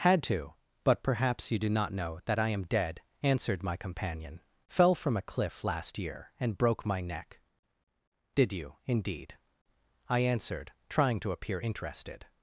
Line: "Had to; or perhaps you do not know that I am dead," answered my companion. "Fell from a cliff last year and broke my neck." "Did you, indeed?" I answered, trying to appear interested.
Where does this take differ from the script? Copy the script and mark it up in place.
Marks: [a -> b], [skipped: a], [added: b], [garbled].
"Had to; [or -> but] perhaps you do not know that I am dead," answered my companion. "Fell from a cliff last year and broke my neck." "Did you, indeed?" I answered, trying to appear interested.